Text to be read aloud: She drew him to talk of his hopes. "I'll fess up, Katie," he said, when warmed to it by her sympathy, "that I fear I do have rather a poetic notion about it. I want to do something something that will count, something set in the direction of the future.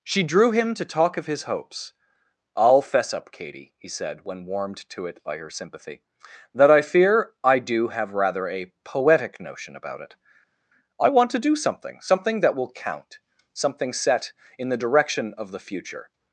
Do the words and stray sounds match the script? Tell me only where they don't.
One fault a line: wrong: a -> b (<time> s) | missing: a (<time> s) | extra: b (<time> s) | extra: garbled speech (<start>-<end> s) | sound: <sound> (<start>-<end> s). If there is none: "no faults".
no faults